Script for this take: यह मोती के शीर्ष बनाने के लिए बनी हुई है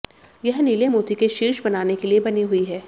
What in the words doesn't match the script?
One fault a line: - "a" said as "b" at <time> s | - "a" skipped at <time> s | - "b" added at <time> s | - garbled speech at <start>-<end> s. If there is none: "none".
- "नीले" added at 0.6 s